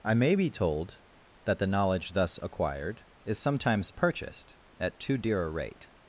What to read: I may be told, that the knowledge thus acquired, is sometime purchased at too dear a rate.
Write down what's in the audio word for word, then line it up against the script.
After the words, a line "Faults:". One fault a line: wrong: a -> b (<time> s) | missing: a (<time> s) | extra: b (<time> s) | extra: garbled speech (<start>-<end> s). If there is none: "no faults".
I may be told, that the knowledge thus acquired, is sometimes purchased at too dear a rate.
Faults:
wrong: sometime -> sometimes (3.4 s)